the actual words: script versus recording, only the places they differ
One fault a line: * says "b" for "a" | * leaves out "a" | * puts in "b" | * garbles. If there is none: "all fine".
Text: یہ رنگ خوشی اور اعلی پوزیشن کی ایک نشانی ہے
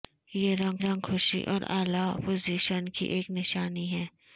* puts in "رنگ"